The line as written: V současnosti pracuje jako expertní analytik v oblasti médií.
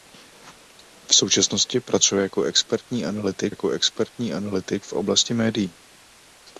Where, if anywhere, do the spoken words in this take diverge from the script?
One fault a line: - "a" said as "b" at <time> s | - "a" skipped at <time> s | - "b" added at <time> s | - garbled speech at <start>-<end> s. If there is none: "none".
- "jako expertní analytik" added at 3.5 s